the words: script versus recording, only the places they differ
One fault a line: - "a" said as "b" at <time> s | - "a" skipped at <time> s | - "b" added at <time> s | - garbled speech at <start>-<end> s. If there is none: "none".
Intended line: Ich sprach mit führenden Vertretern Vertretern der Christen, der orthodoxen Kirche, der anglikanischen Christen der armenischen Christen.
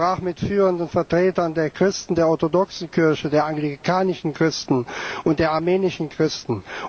- "Vertretern" skipped at 1.5 s
- "und" added at 5.2 s